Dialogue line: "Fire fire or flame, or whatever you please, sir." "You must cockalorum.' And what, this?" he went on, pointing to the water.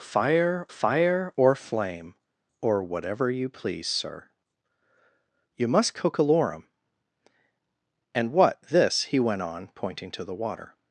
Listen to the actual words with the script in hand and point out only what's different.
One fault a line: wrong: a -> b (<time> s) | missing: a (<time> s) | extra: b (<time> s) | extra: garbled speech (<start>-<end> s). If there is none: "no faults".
no faults